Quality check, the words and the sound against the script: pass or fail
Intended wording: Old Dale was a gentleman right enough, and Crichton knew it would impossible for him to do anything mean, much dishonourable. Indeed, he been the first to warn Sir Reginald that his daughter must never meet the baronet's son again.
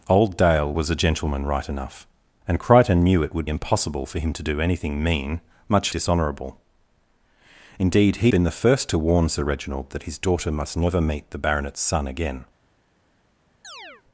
fail